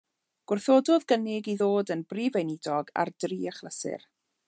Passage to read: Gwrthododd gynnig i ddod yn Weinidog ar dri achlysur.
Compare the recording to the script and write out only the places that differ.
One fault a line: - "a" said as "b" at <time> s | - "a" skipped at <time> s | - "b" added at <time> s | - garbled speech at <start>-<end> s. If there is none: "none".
- "Brif" added at 2.1 s